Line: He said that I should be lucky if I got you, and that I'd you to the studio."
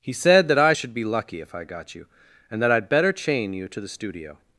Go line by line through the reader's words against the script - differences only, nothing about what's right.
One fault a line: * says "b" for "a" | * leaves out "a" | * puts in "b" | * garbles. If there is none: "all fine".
* puts in "better chain"